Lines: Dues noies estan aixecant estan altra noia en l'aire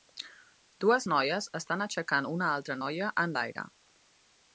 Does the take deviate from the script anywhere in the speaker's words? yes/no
yes